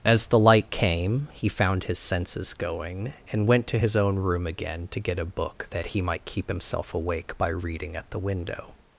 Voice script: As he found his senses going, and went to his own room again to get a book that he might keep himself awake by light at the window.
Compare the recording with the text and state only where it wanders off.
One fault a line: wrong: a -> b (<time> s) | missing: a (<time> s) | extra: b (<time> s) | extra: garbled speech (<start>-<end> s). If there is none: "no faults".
extra: the light came (0.2 s)
wrong: light -> reading (7.5 s)